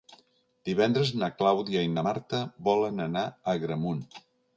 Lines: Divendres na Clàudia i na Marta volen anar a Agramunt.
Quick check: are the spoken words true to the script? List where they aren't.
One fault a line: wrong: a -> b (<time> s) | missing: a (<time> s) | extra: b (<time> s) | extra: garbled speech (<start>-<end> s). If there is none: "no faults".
no faults